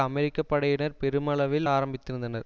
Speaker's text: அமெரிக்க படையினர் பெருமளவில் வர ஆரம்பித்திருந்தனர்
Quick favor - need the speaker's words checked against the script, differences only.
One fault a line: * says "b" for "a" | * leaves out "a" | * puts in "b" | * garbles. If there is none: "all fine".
* leaves out "வர"